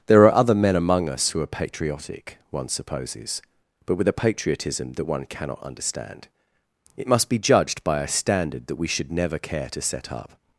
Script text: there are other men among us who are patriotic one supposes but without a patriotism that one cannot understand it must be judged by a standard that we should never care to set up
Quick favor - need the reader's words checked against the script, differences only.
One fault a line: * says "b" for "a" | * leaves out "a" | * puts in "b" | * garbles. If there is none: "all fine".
* says "with" for "without"